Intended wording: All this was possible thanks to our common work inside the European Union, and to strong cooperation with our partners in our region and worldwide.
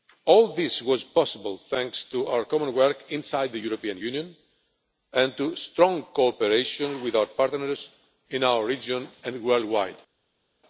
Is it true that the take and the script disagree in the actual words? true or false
false